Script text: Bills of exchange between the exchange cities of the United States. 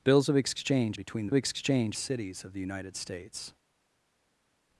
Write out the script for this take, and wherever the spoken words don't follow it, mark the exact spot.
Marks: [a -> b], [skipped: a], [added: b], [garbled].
Bills of exchange between the exchange cities of the United States.